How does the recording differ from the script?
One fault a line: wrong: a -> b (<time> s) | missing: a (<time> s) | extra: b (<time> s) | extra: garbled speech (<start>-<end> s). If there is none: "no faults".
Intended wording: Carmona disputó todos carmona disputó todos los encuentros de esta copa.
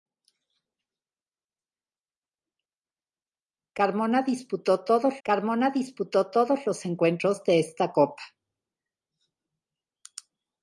no faults